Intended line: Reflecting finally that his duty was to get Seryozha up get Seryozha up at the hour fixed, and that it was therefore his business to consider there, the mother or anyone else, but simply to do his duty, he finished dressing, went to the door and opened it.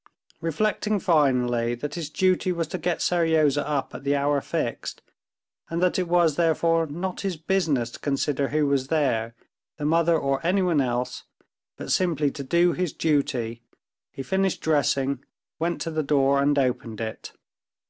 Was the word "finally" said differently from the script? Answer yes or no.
no